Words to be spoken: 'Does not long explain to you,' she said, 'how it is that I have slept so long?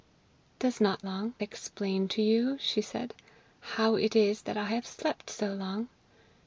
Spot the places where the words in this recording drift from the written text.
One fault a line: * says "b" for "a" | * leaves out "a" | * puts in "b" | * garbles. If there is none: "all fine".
all fine